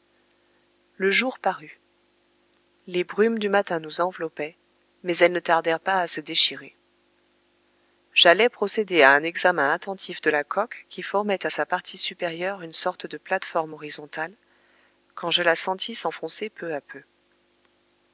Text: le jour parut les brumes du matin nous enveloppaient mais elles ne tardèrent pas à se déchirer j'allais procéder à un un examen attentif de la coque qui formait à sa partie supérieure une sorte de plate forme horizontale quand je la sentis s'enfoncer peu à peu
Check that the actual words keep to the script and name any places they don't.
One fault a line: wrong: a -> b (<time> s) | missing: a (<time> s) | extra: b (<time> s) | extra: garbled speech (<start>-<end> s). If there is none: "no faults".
missing: un (9.2 s)